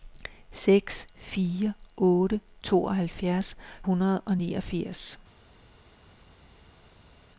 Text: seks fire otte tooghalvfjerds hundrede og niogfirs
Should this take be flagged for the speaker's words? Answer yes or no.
no